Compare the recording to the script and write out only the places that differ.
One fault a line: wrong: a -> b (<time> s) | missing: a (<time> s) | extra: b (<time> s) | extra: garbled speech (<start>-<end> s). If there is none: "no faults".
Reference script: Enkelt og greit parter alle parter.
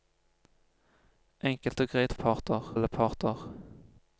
no faults